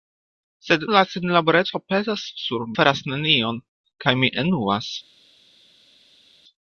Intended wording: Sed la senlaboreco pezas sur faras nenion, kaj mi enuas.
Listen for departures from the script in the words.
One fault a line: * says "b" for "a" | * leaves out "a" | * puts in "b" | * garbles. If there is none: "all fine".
all fine